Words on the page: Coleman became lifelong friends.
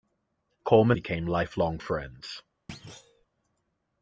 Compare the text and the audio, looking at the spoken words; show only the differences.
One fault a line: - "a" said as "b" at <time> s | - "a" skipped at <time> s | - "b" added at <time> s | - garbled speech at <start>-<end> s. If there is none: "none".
none